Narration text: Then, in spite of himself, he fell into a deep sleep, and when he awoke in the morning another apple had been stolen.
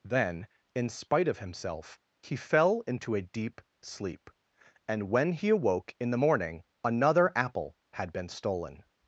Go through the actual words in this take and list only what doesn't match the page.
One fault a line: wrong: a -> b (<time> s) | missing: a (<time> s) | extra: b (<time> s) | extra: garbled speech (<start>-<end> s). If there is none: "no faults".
no faults